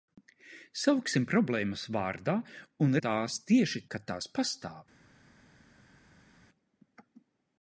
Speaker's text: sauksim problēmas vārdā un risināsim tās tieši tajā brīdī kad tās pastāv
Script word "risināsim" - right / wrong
wrong